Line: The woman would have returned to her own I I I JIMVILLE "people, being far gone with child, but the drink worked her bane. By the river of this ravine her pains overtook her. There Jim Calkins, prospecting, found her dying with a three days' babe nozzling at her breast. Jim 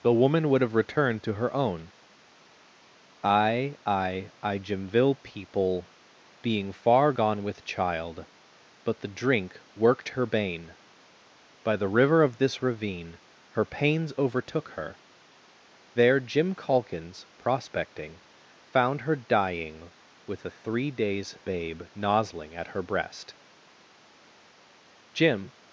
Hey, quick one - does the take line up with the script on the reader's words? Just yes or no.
yes